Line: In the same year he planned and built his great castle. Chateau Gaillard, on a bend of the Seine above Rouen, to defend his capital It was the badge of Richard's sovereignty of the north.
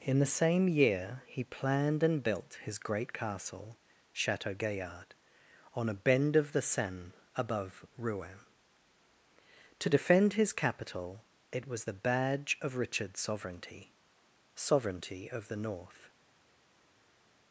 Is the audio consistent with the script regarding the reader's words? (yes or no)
no